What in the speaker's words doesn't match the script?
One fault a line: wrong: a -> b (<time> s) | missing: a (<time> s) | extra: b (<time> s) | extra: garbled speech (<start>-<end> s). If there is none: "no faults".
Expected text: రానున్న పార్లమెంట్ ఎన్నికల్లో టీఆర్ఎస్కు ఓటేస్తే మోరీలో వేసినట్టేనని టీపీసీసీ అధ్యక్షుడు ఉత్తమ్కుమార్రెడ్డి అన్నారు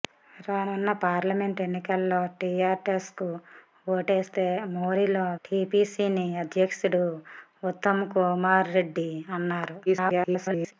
missing: వేసినట్టేనని (5.2 s)
extra: garbled speech (9.9-10.7 s)